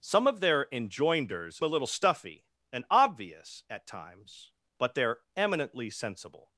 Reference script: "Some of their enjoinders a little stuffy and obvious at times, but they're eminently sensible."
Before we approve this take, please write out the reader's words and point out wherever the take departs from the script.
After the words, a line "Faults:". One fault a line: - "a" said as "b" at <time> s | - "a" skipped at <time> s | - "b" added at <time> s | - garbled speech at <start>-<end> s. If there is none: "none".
"Some of their enjoinders a little stuffy and obvious at times, but they're eminently sensible."
Faults:
none